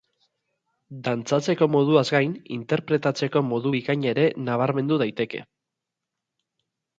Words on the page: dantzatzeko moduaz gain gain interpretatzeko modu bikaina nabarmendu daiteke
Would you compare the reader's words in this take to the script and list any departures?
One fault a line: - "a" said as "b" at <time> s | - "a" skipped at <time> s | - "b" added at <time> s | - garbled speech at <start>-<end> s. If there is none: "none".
- "gain" skipped at 2.3 s
- "ere" added at 4.1 s